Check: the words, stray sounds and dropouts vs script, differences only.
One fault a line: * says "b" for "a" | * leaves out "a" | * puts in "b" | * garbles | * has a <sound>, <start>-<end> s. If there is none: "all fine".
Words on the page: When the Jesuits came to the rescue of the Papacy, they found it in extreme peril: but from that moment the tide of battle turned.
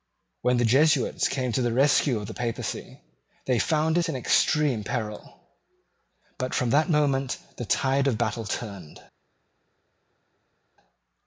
all fine